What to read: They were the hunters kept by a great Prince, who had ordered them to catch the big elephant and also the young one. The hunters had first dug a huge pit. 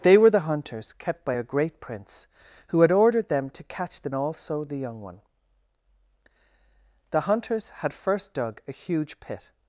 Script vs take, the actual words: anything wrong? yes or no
yes